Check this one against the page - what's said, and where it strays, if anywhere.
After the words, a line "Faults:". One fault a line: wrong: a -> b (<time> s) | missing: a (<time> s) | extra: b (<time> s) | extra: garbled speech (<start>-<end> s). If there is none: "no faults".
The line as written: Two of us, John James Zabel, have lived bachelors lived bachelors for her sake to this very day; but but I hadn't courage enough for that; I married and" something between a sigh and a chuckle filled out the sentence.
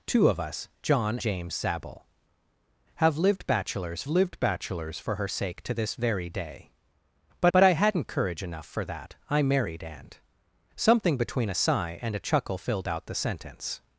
Two of us, John James Zabel, have lived bachelors lived bachelors for her sake to this very day; but but I hadn't courage enough for that; I married and" something between a sigh and a chuckle filled out the sentence.
Faults:
no faults